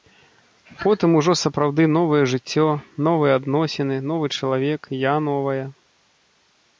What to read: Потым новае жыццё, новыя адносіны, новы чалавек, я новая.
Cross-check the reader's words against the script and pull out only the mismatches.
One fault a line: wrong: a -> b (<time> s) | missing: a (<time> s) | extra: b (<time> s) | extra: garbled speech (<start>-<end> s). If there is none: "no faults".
extra: ужо сапраўды (1.2 s)